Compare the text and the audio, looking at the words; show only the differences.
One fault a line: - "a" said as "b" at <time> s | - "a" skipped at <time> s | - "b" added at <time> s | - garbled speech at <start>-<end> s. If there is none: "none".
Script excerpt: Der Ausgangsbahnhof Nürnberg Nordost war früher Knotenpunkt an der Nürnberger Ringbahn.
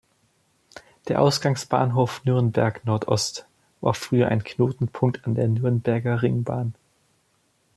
- "ein" added at 4.3 s